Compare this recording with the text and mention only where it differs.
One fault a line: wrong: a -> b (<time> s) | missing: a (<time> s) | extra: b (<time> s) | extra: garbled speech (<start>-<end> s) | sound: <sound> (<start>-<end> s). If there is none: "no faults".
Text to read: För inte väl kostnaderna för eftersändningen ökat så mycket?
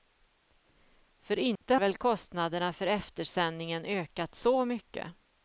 sound: dropout (1.6-1.6 s)